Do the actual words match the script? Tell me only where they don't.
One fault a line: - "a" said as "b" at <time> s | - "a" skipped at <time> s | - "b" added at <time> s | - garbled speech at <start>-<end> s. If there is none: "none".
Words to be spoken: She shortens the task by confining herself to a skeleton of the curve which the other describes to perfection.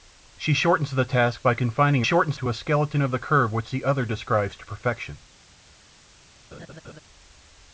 - "herself" said as "shortens" at 2.0 s